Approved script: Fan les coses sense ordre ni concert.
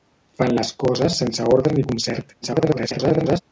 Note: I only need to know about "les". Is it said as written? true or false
true